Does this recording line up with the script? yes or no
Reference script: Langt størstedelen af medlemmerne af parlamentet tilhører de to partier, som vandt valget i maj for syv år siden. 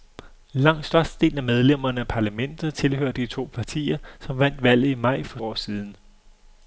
no